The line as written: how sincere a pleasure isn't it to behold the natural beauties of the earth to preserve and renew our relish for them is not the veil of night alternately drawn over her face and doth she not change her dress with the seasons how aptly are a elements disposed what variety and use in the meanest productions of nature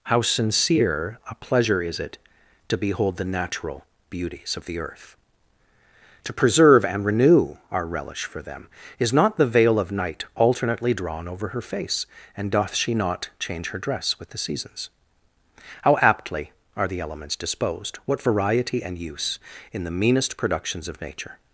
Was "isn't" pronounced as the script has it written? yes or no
no